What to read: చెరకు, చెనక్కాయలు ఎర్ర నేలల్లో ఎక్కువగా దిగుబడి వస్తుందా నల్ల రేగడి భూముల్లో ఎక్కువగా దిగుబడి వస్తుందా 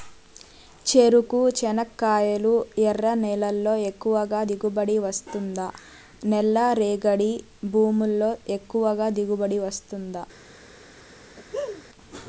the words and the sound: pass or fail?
fail